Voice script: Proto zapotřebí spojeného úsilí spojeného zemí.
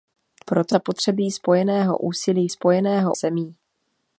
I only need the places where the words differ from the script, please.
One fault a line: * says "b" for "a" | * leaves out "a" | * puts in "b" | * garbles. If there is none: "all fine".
all fine